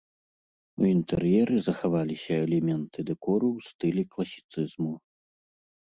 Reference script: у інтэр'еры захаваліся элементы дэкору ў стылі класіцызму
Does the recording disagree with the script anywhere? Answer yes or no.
no